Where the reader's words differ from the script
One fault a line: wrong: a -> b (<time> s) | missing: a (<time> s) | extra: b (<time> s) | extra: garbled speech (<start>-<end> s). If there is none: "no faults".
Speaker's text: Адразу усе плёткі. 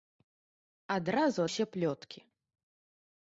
no faults